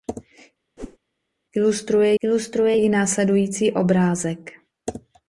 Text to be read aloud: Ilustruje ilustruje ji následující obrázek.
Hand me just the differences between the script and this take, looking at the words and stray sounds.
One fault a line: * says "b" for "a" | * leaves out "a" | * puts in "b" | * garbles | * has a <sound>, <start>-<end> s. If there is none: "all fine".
* has a whoosh, 0.8-1.0 s